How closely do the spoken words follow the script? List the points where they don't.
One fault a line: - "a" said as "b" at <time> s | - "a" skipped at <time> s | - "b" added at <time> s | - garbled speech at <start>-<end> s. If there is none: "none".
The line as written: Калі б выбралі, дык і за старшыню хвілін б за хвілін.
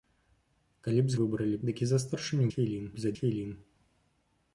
none